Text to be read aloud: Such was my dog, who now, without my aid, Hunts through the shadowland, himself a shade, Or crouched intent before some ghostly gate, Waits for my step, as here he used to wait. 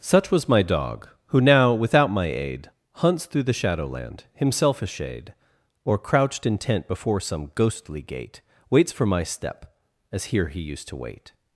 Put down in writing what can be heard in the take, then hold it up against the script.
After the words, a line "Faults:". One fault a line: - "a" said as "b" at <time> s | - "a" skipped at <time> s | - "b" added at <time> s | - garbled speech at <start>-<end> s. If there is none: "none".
Such was my dog, who now, without my aid, Hunts through the shadowland, himself a shade, Or crouched intent before some ghostly gate, Waits for my step, as here he used to wait.
Faults:
none